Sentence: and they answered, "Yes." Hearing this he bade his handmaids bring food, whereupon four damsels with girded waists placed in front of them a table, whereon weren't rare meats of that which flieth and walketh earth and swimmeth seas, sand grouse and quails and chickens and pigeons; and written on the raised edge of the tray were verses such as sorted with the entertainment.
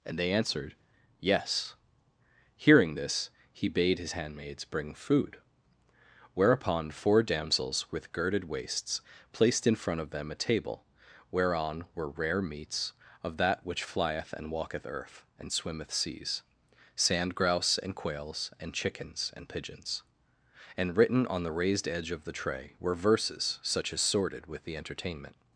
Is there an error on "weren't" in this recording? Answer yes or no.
yes